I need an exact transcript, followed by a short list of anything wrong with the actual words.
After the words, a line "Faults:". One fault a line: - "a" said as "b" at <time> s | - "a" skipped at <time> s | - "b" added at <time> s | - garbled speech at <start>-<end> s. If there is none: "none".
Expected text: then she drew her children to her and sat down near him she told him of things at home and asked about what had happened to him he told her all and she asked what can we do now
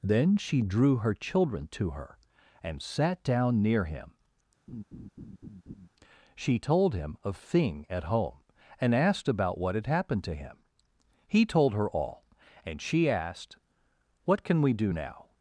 then she drew her children to her and sat down near him she told him of thing at home and asked about what had happened to him he told her all and she asked what can we do now
Faults:
- "things" said as "thing" at 7.4 s